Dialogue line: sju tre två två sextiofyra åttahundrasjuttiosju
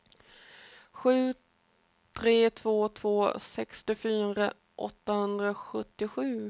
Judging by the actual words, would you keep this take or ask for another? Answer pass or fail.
pass